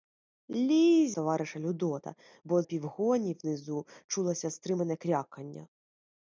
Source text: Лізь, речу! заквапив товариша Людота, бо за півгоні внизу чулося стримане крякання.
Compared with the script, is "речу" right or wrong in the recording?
wrong